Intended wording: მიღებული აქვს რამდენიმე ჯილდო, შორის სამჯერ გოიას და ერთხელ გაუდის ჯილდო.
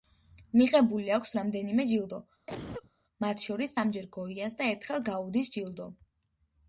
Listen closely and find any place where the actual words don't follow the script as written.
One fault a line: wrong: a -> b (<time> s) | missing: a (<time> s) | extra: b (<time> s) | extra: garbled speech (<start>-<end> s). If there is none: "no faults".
extra: მათ (3.2 s)